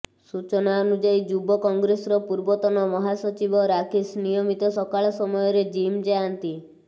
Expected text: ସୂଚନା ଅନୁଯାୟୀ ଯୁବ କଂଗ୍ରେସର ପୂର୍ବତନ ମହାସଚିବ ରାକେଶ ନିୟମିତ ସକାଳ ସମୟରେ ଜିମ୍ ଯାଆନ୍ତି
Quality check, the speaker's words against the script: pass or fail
pass